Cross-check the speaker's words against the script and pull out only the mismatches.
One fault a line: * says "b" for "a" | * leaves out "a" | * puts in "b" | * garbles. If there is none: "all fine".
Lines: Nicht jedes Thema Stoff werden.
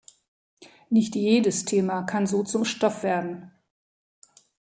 * puts in "kann so zum"